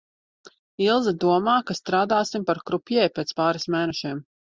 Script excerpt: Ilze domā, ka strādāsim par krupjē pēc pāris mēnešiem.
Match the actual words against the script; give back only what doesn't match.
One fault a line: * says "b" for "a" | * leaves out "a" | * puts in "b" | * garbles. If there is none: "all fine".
all fine